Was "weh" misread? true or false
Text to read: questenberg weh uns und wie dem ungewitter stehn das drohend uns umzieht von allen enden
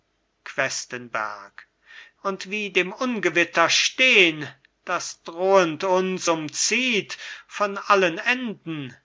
true